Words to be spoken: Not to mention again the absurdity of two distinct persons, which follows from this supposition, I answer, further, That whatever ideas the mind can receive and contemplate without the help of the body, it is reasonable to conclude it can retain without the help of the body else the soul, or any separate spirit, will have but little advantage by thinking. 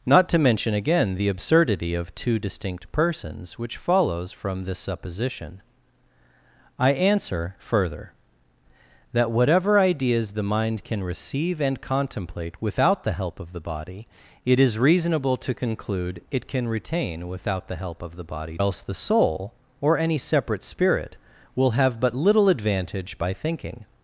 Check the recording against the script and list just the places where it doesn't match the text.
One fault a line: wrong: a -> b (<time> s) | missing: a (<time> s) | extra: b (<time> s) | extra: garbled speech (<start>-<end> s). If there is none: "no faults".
no faults